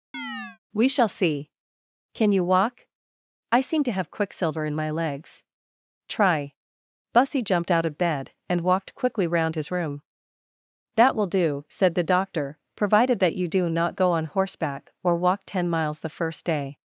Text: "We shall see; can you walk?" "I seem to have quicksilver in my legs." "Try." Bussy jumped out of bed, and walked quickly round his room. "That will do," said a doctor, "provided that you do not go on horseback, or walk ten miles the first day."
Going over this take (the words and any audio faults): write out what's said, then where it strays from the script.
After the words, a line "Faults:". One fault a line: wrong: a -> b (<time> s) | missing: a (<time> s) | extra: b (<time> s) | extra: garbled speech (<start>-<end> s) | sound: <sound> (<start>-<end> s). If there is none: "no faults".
"We shall see; can you walk?" "I seem to have quicksilver in my legs." "Try." Bussy jumped out of bed, and walked quickly round his room. "That will do," said the doctor, "provided that you do not go on horseback, or walk ten miles the first day."
Faults:
sound: chirp (0.1-0.6 s)
wrong: a -> the (12.0 s)